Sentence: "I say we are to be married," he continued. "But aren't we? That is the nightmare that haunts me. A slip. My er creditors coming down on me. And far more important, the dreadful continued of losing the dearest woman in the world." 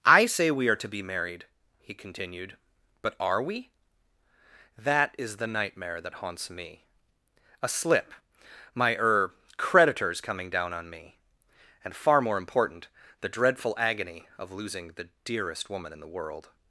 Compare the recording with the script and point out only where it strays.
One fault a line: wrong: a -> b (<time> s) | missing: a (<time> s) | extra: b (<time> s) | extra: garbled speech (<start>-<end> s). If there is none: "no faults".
wrong: aren't -> are (3.2 s)
wrong: continued -> agony (13.8 s)